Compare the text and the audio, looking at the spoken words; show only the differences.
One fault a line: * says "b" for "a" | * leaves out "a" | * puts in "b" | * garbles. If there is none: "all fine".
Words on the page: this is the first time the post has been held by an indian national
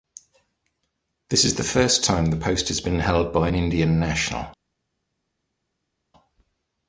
all fine